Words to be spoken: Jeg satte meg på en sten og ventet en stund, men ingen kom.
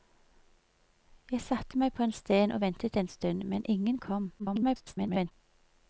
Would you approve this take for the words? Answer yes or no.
no